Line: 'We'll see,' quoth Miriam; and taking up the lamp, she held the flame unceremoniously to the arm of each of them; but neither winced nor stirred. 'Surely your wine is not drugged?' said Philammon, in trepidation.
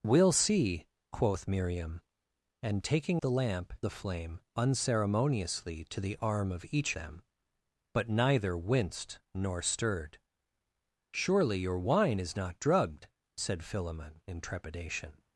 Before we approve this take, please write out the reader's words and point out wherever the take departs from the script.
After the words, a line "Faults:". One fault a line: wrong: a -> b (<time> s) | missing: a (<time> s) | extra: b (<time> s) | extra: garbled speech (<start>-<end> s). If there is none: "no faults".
'We'll see,' quoth Miriam; and taking the lamp, the flame unceremoniously to the arm of each them; but neither winced nor stirred. 'Surely your wine is not drugged?' said Philammon, in trepidation.
Faults:
missing: up (3.2 s)
missing: she held (3.7 s)
missing: of (6.9 s)